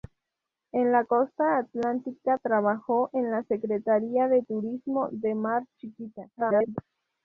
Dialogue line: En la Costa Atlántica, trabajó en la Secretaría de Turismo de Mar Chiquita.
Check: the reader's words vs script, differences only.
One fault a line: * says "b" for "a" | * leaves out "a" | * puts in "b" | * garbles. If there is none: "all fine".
* garbles